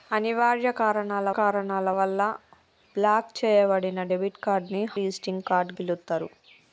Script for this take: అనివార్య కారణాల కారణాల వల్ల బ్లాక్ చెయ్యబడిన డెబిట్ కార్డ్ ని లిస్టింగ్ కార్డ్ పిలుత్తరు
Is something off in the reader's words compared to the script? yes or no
no